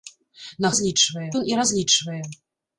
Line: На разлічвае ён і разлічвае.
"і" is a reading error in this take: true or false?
false